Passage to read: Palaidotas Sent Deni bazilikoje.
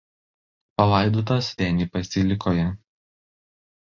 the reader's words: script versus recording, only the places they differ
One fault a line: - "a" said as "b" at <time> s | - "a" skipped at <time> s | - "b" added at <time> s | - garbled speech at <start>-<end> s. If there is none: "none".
- "Sent" skipped at 1.5 s